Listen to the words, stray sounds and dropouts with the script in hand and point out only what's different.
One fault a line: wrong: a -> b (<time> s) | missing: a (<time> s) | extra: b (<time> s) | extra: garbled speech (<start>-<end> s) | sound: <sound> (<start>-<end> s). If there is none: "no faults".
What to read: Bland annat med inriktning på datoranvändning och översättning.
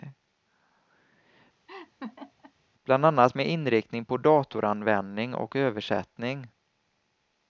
sound: laugh (1.7-2.5 s)